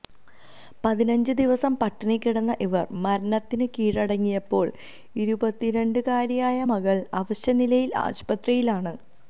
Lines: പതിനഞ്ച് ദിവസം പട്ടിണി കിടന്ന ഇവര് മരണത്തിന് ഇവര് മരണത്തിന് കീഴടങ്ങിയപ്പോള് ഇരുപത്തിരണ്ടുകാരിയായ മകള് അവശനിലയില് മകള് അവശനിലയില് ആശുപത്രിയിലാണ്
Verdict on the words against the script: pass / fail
fail